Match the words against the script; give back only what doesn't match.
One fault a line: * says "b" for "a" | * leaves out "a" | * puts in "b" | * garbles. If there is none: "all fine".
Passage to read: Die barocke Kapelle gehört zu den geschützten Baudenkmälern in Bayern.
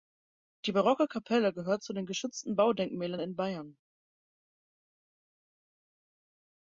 all fine